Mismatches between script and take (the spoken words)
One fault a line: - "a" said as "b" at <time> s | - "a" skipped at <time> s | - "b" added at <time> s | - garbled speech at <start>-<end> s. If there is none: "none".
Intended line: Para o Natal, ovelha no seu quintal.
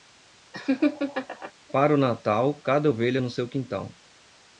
- "cada" added at 2.6 s